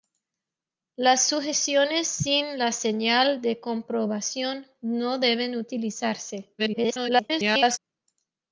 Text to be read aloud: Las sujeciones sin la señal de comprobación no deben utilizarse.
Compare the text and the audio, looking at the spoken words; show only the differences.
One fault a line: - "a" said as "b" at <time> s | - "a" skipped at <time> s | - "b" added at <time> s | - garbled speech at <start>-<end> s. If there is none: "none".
- garbled speech at 6.6-7.8 s